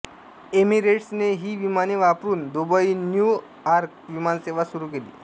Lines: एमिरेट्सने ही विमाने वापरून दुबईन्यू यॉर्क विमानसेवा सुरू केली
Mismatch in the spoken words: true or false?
false